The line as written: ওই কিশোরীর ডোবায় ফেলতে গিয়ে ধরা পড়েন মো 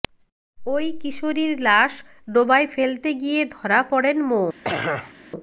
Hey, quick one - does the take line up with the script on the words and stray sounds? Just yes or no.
no